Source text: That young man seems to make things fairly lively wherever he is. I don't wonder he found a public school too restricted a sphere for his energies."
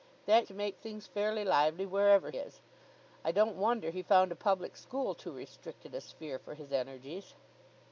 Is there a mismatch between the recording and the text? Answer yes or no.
yes